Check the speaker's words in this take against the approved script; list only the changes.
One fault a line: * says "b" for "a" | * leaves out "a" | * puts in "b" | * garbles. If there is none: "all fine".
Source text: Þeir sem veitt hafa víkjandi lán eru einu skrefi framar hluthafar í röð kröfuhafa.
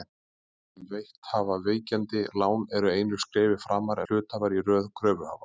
all fine